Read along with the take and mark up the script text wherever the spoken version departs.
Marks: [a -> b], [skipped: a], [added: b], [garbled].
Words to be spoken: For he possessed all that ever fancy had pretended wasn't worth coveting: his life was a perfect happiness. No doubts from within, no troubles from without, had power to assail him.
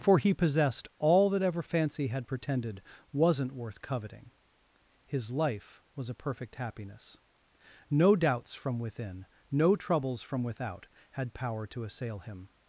For he possessed all that ever fancy had pretended wasn't worth coveting: his life was a perfect happiness. No doubts from within, no troubles from without, had power to assail him.